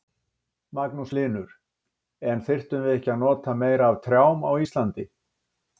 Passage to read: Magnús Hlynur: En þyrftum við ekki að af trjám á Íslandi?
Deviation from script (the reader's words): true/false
true